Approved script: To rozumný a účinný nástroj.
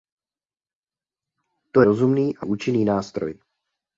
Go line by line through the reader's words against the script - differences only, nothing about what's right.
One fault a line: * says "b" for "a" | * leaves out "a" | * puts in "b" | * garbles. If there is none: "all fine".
all fine